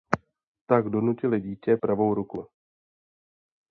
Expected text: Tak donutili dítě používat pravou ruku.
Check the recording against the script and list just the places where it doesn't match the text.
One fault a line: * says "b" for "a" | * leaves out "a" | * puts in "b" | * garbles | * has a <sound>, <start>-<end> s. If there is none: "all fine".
* leaves out "používat"